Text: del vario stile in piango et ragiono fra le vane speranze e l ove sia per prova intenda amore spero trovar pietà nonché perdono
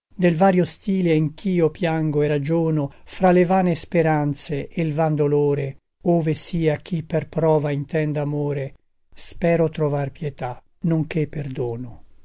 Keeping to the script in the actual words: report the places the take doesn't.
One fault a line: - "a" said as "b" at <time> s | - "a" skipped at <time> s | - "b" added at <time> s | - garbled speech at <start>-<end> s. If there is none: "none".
- "ch'io" added at 1.4 s
- "van dolore" added at 4.9 s
- "chi" added at 6.8 s